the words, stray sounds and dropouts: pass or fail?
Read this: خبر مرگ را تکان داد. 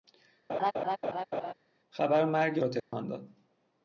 fail